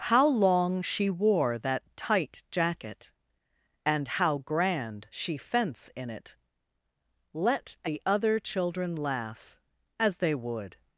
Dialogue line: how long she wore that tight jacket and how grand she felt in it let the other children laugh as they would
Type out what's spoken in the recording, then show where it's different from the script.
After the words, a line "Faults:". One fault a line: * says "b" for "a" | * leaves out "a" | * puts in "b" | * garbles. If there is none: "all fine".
how long she wore that tight jacket and how grand she fence in it let the other children laugh as they would
Faults:
* says "fence" for "felt"